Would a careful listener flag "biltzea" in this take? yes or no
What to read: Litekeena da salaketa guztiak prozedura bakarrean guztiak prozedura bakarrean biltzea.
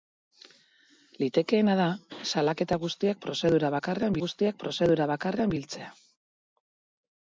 no